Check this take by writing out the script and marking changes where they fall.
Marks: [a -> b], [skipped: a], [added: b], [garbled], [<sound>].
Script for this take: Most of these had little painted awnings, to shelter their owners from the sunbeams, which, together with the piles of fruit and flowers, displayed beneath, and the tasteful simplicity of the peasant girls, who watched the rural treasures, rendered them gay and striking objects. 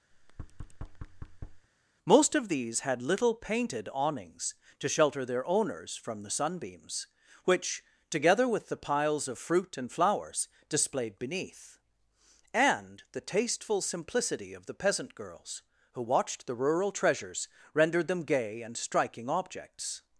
[thud] Most of these had little painted awnings, to shelter their owners from the sunbeams, which, together with the piles of fruit and flowers, displayed beneath, and the tasteful simplicity of the peasant girls, who watched the rural treasures, rendered them gay and striking objects.